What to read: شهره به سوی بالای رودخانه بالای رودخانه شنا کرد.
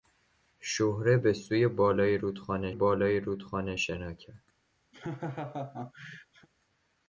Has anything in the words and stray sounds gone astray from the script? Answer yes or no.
yes